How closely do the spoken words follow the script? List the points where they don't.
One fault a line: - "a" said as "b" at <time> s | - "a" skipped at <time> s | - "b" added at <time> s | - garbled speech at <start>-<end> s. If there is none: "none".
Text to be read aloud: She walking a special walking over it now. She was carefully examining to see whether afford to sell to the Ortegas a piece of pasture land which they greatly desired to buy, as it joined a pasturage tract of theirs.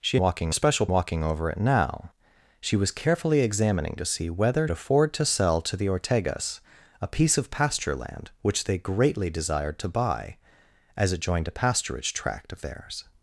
none